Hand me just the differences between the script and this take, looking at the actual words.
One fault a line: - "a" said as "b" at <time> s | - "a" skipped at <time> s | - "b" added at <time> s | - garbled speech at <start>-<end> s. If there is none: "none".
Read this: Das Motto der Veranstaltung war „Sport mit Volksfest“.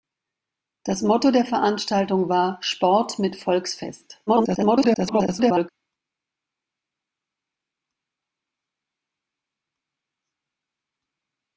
- garbled speech at 4.3-5.7 s